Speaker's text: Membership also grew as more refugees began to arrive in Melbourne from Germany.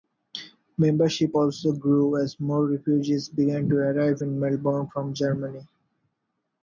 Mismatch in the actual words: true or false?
false